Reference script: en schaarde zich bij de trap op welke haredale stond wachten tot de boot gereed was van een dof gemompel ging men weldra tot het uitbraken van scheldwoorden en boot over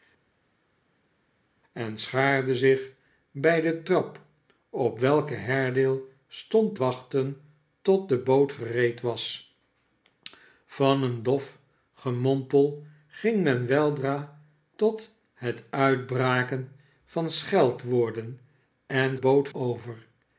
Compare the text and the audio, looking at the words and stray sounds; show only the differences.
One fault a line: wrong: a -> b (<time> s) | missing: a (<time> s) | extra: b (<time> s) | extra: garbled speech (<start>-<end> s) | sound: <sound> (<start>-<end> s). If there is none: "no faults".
no faults